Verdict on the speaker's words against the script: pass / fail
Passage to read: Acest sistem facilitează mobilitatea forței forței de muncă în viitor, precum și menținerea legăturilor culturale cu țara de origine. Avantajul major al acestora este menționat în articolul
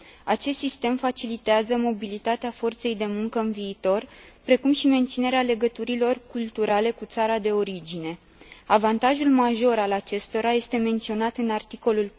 fail